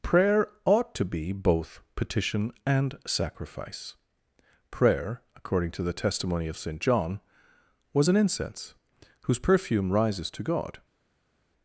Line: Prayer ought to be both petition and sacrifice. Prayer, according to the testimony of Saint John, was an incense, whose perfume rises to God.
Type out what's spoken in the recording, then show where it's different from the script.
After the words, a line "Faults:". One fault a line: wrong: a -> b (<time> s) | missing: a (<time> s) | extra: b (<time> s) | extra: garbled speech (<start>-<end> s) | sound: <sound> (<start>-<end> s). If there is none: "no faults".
Prayer ought to be both petition and sacrifice. Prayer, according to the testimony of Saint John, was an incense, whose perfume rises to God.
Faults:
no faults